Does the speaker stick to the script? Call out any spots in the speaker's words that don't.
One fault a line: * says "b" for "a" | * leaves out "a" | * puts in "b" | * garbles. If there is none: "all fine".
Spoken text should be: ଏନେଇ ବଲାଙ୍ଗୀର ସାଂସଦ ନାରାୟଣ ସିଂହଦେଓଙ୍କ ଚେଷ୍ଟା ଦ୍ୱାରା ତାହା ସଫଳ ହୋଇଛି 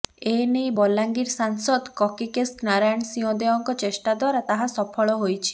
* puts in "କକିକେଶ"